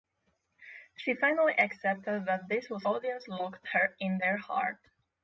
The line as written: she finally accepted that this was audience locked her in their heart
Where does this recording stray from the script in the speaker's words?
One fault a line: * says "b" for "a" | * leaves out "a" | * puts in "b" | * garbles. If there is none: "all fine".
all fine